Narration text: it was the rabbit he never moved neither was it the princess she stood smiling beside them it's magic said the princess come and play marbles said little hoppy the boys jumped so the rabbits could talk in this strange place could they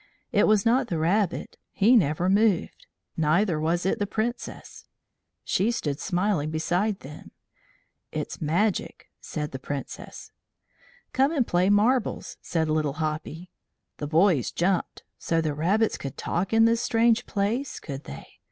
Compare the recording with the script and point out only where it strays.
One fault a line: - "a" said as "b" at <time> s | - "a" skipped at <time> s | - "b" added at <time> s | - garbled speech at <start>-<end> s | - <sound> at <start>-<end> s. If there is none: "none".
- "not" added at 0.7 s